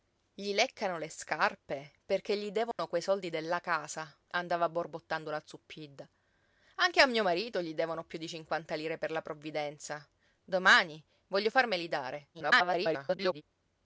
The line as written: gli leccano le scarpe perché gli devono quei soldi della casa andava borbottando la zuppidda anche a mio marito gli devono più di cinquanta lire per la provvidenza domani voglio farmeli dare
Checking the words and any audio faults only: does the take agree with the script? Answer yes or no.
no